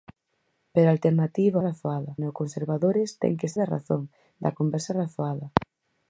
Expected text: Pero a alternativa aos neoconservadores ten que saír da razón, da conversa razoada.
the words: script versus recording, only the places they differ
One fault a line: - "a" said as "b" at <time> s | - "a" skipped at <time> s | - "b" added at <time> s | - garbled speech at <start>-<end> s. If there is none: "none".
- "aos" said as "razoada" at 1.7 s
- "saír" skipped at 3.5 s